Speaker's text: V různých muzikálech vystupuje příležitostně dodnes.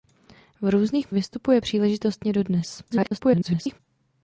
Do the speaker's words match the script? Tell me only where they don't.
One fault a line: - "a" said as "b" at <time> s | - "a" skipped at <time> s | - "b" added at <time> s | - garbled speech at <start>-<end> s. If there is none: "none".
- "muzikálech" skipped at 1.1 s
- garbled speech at 2.9-3.8 s